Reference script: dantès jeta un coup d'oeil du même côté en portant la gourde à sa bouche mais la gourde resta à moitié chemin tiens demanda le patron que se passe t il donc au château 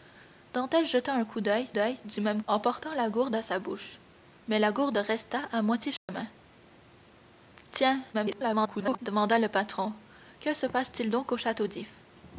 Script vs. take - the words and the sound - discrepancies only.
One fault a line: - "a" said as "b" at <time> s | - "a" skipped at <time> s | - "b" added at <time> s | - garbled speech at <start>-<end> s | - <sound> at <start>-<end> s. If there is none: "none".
- "d'oeil" added at 1.7 s
- "côté" skipped at 2.4 s
- dropout at 6.0-6.1 s
- garbled speech at 8.1-9.0 s